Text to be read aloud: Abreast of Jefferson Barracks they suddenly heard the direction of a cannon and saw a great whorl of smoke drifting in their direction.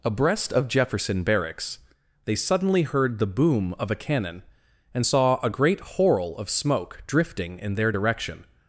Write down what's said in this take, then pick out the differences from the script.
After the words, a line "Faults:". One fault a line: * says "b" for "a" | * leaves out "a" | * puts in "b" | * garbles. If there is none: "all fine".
Abreast of Jefferson Barracks they suddenly heard the boom of a cannon and saw a great whorl of smoke drifting in their direction.
Faults:
* says "boom" for "direction"